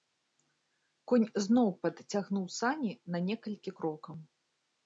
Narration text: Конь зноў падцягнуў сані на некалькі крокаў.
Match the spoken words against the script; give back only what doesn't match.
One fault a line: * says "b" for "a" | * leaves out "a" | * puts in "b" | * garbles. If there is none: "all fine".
all fine